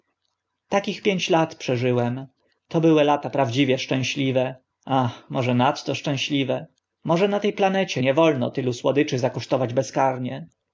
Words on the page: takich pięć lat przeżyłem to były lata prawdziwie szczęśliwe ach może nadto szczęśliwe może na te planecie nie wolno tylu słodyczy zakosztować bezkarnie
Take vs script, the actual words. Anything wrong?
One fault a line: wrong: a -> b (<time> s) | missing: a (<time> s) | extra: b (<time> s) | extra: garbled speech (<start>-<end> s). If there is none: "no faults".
no faults